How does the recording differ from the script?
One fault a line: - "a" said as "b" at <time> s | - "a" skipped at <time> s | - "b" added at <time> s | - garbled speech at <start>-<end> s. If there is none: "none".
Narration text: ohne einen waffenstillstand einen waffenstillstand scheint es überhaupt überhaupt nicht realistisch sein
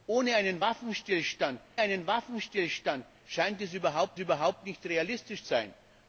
none